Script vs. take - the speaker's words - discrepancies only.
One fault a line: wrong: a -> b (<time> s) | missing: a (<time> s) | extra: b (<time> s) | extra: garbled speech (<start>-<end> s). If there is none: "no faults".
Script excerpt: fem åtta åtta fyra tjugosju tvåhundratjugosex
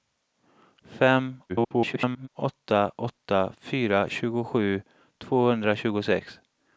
extra: garbled speech (1.5-2.3 s)